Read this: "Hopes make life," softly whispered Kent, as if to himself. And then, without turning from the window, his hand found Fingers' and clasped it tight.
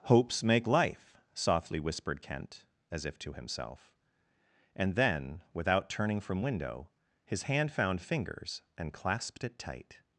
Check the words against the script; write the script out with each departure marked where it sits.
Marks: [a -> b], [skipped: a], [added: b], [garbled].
"Hopes make life," softly whispered Kent, as if to himself. And then, without turning from [skipped: the] window, his hand found Fingers' and clasped it tight.